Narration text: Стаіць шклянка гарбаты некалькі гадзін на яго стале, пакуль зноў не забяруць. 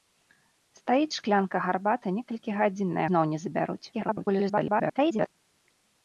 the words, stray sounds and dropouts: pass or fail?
fail